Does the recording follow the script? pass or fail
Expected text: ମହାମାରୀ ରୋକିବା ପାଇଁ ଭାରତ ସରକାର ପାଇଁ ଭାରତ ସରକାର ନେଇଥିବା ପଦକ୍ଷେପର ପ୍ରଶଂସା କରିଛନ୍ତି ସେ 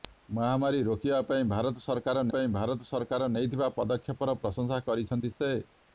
pass